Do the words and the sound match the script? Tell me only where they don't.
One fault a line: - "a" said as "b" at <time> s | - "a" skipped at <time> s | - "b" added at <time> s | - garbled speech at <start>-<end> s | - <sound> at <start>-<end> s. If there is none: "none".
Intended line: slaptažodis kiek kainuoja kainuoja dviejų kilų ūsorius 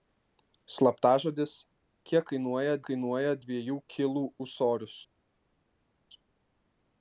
none